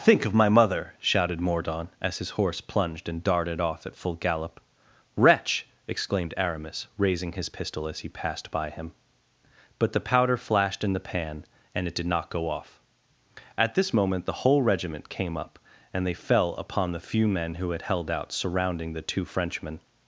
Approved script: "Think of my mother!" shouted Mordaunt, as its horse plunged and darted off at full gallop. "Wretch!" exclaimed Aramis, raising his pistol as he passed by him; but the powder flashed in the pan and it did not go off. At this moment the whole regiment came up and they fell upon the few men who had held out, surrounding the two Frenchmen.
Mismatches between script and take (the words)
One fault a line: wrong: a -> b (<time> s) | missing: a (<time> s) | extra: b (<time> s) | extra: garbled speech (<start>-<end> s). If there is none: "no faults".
wrong: its -> his (2.2 s)